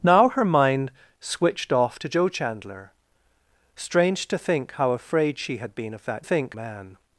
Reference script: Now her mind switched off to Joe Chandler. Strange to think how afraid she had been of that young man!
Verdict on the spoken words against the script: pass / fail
fail